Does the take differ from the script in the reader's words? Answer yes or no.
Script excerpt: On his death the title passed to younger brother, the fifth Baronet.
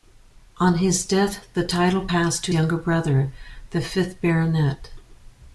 no